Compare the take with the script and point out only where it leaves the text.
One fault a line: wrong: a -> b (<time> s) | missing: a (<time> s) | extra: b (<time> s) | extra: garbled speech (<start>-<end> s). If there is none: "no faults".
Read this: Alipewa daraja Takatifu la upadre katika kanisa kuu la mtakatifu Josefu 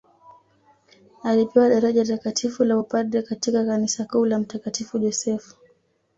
no faults